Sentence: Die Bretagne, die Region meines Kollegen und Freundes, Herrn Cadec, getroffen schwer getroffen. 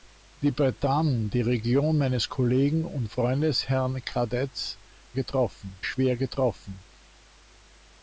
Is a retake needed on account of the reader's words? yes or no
no